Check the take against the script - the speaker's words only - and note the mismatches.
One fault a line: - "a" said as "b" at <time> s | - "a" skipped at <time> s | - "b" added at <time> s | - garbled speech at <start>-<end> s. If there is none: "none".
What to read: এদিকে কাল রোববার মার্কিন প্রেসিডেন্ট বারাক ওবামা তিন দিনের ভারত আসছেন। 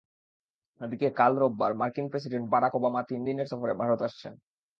- "সফরে" added at 3.5 s